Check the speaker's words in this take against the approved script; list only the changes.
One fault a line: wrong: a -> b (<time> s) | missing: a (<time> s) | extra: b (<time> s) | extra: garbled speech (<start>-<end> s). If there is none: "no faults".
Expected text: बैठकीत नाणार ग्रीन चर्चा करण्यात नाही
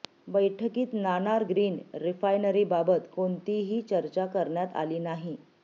extra: रिफायनरीबाबत कोणतीही (2.0 s)
extra: आली (4.8 s)